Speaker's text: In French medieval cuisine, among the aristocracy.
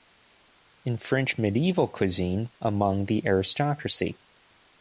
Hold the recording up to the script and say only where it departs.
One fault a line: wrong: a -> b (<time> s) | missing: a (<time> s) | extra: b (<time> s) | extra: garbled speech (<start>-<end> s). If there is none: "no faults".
no faults